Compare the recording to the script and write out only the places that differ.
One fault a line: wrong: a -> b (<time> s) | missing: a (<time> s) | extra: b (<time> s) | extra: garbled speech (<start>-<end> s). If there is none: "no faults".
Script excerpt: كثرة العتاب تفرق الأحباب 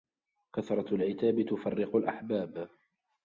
no faults